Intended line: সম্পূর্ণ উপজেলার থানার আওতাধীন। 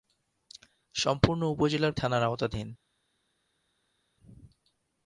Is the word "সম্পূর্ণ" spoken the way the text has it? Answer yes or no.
yes